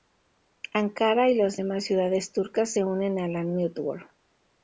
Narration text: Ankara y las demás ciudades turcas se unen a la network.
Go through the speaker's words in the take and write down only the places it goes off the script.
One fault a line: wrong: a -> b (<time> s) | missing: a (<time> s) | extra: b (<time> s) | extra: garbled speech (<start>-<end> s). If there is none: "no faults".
no faults